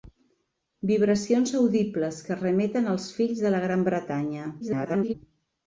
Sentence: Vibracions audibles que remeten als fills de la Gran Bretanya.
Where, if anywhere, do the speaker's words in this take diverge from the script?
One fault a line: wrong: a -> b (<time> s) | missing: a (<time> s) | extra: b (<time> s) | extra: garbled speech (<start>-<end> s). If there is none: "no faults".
extra: garbled speech (4.6-5.1 s)